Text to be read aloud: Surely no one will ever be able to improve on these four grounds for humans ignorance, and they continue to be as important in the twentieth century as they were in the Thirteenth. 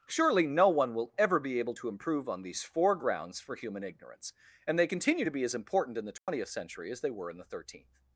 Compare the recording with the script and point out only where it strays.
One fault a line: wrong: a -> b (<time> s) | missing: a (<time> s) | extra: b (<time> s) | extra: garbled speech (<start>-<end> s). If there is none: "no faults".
wrong: humans -> human (3.5 s)